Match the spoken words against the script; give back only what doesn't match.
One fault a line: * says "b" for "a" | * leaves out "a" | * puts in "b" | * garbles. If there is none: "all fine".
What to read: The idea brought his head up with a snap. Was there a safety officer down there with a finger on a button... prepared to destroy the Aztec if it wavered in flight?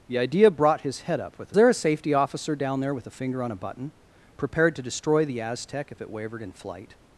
* leaves out "snap Was"